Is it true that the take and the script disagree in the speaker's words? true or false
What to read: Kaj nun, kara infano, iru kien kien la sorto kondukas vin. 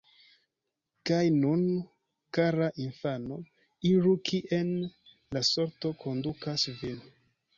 true